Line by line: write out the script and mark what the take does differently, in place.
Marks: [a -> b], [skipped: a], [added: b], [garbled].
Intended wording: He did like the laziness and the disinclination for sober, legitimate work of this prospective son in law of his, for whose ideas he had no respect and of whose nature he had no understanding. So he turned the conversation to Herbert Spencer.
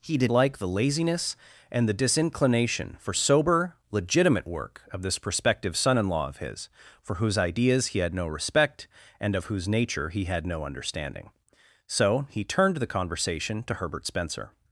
He did like the laziness and the disinclination for sober, legitimate work of this prospective son in law of his, for whose ideas he had no respect and of whose nature he had no understanding. So he turned the conversation to Herbert Spencer.